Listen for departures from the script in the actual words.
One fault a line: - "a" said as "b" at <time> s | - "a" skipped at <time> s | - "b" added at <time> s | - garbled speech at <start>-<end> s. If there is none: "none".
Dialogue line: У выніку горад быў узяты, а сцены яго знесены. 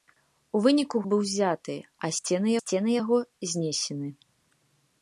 - "горад" skipped at 1.0 s
- "сцены" added at 2.6 s